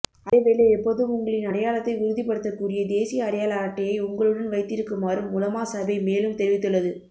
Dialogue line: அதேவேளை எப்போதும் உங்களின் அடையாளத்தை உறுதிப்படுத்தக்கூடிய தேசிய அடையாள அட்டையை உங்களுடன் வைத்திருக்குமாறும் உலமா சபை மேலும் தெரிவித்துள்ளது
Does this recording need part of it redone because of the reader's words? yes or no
no